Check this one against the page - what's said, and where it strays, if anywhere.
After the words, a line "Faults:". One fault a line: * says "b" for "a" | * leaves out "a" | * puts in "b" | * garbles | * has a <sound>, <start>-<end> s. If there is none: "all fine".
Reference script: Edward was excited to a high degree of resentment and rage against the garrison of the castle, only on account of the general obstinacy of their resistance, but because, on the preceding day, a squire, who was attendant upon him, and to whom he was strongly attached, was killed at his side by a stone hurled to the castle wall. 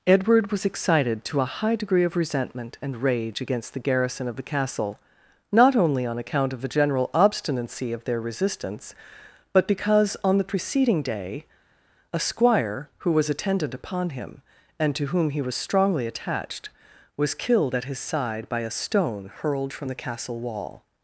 Edward was excited to a high degree of resentment and rage against the garrison of the castle, not only on account of the general obstinacy of their resistance, but because, on the preceding day, a squire, who was attendant upon him, and to whom he was strongly attached, was killed at his side by a stone hurled from the castle wall.
Faults:
* puts in "not"
* says "from" for "to"